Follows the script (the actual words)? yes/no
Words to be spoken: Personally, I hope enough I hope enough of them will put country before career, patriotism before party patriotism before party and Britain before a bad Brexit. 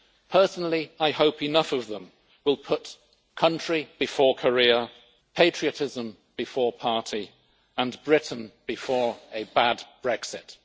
no